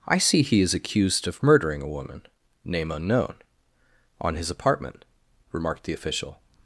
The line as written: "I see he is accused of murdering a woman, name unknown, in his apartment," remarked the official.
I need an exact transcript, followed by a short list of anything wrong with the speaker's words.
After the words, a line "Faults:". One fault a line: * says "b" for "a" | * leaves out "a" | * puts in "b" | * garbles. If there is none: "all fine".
"I see he is accused of murdering a woman, name unknown, on his apartment," remarked the official.
Faults:
* says "on" for "in"